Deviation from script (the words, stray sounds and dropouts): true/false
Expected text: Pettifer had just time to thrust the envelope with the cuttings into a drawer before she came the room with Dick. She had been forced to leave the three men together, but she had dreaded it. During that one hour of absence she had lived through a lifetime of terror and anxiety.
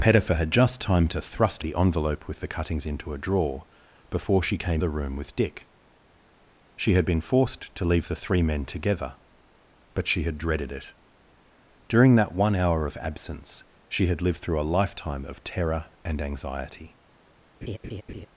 true